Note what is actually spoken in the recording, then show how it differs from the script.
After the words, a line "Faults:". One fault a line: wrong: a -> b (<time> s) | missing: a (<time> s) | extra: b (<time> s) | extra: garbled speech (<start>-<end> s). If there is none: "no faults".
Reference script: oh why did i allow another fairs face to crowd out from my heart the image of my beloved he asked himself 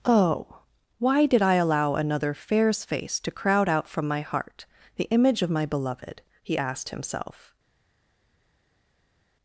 oh why did i allow another fairs face to crowd out from my heart the image of my beloved he asked himself
Faults:
no faults